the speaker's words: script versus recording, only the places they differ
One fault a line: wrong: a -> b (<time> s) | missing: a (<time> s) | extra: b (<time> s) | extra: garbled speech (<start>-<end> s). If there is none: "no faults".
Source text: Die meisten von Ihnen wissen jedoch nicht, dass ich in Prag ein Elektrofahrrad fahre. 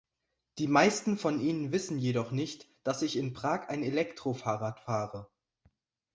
no faults